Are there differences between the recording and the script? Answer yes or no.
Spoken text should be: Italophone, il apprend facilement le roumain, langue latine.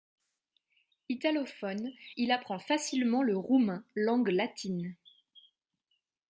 no